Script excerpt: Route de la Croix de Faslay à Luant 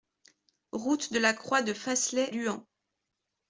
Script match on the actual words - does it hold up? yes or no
no